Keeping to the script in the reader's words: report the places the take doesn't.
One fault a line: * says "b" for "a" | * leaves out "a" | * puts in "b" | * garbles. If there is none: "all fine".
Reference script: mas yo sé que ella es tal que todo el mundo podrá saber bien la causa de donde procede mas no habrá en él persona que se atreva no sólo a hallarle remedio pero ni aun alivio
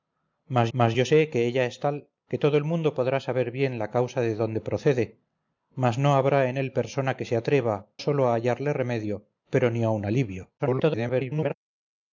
* puts in "mas"
* leaves out "no"
* garbles